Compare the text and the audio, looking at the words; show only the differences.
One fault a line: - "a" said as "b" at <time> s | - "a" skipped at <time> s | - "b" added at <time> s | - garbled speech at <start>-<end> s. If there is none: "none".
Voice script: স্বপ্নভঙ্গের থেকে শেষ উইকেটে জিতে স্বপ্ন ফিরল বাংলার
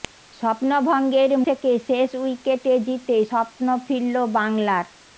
none